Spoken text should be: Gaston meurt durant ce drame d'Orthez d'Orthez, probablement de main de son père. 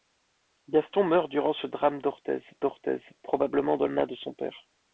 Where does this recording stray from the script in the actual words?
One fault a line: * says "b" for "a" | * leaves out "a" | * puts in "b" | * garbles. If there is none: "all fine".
all fine